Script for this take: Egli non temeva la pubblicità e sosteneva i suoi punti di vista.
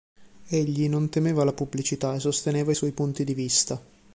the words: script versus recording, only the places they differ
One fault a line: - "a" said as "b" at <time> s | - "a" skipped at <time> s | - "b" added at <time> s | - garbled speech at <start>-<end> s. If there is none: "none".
none